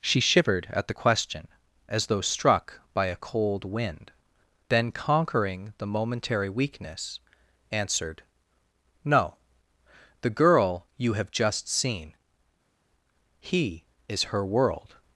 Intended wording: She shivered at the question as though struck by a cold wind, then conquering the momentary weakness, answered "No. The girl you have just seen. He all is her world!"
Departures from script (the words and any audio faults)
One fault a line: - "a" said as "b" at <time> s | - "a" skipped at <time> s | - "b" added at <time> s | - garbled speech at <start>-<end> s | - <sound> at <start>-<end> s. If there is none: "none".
- "all" skipped at 13.8 s